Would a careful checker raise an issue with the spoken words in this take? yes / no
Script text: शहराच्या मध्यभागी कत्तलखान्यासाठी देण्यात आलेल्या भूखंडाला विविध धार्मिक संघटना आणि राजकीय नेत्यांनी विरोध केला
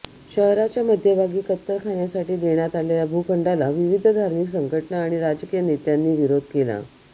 no